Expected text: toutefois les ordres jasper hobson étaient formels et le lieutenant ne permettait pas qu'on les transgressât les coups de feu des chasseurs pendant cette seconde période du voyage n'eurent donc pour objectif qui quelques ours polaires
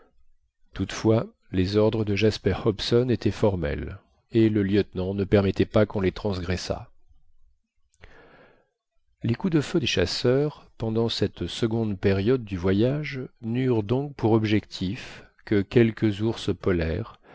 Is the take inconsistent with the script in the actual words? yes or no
yes